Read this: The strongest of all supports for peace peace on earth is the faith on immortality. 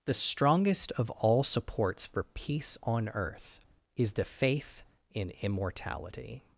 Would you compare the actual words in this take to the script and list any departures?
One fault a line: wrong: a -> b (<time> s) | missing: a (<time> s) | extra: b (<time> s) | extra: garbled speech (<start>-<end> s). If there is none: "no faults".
missing: peace (2.8 s)
wrong: on -> in (5.1 s)